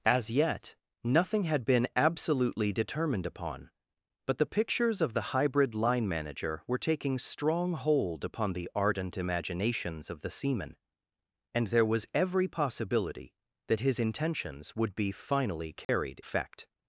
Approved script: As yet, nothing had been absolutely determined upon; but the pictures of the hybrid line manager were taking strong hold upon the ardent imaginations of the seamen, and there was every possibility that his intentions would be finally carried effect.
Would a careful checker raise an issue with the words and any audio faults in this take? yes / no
yes